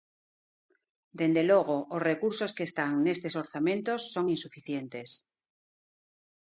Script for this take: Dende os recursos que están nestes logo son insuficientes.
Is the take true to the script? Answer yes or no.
no